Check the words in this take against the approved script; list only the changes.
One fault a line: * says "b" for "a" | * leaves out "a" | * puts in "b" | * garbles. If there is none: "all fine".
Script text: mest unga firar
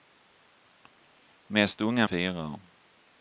all fine